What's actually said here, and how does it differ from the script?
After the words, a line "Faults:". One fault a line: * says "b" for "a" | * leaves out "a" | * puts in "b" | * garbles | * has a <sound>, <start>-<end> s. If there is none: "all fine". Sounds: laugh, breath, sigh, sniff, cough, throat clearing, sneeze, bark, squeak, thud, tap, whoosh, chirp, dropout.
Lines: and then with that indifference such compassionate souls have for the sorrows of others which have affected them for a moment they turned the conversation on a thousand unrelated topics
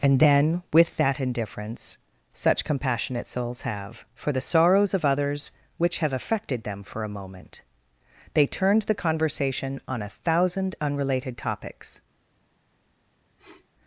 and then with that indifference such compassionate souls have for the sorrows of others which have affected them for a moment they turned the conversation on a thousand unrelated topics
Faults:
* has a sniff, 13.4-13.7 s